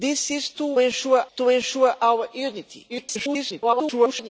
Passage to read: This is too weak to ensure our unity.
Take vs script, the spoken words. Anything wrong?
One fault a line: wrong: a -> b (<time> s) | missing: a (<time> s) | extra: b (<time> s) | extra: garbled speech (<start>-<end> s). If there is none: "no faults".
wrong: weak -> ensure (0.8 s)
extra: garbled speech (2.9-4.3 s)